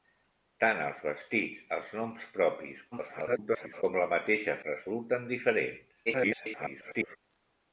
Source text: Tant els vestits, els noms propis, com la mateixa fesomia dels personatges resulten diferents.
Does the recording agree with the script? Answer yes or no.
no